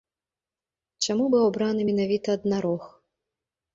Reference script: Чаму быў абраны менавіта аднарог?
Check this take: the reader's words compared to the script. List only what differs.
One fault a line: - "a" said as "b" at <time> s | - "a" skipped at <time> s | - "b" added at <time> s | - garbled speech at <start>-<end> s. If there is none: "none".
none